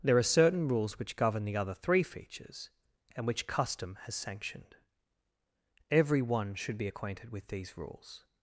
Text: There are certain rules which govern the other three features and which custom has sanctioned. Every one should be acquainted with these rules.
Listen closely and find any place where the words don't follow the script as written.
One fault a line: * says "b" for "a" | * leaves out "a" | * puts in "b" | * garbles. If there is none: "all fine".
all fine